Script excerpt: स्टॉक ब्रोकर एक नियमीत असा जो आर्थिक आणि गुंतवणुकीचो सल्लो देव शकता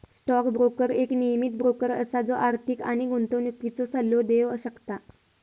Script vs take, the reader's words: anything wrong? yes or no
yes